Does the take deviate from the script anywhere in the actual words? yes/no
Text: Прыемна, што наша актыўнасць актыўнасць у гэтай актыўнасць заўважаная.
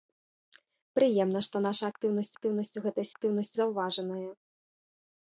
no